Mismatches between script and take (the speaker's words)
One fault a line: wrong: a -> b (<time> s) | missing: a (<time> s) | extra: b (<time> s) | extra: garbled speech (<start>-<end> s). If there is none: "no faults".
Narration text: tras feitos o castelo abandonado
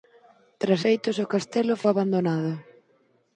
no faults